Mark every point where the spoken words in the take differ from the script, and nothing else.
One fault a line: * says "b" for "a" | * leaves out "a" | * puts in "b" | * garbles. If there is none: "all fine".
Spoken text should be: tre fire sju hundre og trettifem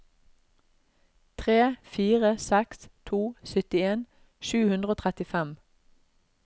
* puts in "seks to syttien"